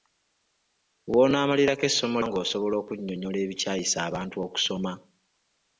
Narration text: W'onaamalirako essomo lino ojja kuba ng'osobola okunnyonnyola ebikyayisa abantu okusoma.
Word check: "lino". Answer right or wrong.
wrong